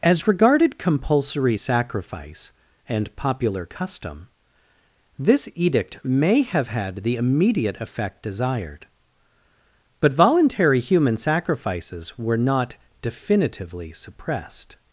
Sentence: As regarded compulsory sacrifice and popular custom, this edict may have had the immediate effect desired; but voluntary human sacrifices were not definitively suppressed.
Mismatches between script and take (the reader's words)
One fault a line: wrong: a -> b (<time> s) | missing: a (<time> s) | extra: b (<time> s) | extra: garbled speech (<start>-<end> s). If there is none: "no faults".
no faults